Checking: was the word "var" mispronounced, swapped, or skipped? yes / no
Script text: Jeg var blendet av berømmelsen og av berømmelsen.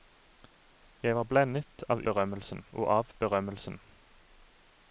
no